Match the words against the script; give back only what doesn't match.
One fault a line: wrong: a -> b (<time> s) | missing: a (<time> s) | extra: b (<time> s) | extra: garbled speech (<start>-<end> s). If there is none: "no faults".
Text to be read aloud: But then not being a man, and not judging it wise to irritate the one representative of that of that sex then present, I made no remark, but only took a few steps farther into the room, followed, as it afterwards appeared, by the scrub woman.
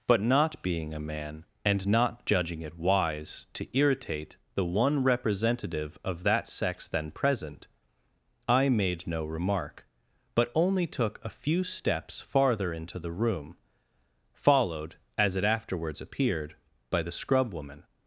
missing: then (0.2 s)
missing: of that (6.5 s)